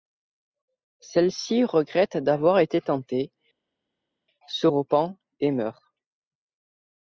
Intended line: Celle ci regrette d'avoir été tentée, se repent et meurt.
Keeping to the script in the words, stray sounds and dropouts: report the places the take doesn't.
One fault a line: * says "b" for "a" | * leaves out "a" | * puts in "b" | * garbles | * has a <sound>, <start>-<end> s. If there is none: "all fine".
all fine